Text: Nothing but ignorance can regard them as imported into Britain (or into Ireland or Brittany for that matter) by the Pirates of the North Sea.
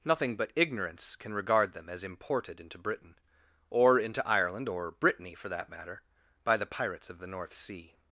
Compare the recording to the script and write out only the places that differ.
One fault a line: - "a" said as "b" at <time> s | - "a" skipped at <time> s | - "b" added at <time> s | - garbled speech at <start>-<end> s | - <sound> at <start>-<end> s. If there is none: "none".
none